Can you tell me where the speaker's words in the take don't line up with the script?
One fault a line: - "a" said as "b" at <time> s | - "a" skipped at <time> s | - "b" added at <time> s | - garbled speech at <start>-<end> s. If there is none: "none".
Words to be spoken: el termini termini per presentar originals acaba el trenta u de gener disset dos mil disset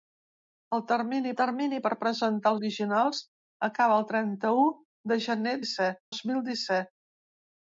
none